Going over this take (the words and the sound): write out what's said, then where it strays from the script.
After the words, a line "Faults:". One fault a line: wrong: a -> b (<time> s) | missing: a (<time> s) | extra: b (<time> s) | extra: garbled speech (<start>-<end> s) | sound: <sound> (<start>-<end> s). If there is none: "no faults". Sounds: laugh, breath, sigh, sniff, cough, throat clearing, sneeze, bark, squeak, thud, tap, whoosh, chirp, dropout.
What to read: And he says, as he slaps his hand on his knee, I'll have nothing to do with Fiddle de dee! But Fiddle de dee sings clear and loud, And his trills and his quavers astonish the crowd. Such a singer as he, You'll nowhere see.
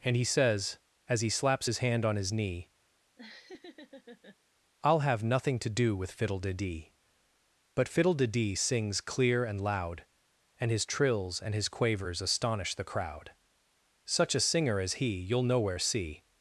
And he says, as he slaps his hand on his knee, I'll have nothing to do with Fiddle de dee! But Fiddle de dee sings clear and loud, And his trills and his quavers astonish the crowd. Such a singer as he, You'll nowhere see.
Faults:
sound: laugh (3.2-4.4 s)